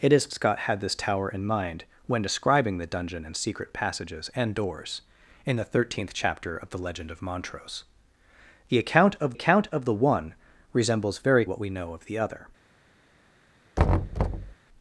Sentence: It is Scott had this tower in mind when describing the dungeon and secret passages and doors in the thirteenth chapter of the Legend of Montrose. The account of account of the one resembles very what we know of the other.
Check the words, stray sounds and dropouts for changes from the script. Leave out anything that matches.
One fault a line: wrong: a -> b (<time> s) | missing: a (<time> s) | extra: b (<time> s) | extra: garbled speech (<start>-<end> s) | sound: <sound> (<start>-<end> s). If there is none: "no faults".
sound: thud (13.8-14.5 s)